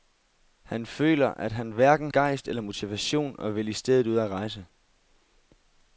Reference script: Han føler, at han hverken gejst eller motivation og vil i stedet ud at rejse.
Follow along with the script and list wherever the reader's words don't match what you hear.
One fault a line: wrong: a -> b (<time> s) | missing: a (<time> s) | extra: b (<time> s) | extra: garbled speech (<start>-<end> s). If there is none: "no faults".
no faults